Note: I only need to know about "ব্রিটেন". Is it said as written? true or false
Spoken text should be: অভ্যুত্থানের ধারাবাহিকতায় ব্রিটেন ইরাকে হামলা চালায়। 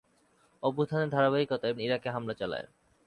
false